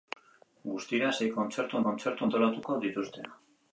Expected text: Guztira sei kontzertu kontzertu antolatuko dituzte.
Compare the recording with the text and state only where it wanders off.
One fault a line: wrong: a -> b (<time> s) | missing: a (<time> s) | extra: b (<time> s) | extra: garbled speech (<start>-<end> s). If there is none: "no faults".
no faults